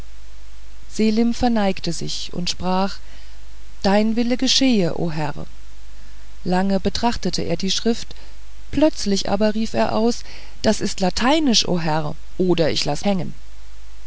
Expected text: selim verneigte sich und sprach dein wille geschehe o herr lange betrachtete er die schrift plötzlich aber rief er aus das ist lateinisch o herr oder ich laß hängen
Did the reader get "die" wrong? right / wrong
right